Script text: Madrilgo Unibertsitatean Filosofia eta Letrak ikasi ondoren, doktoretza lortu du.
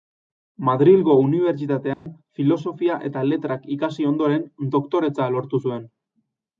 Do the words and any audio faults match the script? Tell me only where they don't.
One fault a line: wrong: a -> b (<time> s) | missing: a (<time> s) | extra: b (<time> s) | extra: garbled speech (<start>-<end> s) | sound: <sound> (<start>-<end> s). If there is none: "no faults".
sound: dropout (1.9-2.1 s)
wrong: du -> zuen (5.6 s)